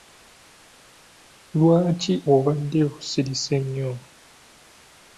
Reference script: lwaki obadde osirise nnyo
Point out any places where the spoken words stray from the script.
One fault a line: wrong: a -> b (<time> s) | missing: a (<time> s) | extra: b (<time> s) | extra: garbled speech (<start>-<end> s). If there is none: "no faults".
no faults